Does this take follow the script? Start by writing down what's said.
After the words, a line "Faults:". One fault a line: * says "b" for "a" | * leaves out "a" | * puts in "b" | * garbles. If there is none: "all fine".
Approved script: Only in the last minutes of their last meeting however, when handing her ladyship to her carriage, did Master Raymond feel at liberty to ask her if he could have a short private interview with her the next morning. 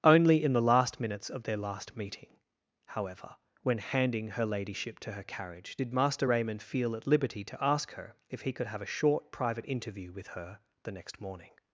Only in the last minutes of their last meeting however, when handing her ladyship to her carriage, did Master Raymond feel at liberty to ask her if he could have a short private interview with her the next morning.
Faults:
all fine